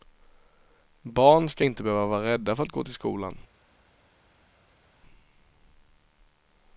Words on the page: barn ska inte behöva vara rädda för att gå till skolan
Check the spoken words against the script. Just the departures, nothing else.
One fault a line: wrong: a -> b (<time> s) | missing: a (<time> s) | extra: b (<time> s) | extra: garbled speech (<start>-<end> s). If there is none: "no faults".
no faults